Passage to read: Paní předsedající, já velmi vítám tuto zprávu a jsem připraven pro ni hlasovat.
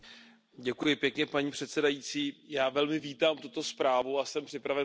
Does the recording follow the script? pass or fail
pass